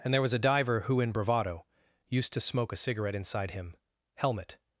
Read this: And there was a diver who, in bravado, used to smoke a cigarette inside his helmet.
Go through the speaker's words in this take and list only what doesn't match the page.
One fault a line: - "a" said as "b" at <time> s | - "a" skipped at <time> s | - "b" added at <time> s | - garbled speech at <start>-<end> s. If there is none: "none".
- "his" said as "him" at 3.5 s